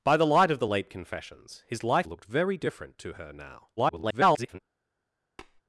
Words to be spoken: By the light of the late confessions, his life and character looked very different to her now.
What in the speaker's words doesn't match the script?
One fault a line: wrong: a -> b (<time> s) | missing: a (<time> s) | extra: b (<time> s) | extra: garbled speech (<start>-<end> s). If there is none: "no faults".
missing: and character (2.1 s)
extra: garbled speech (3.8-4.6 s)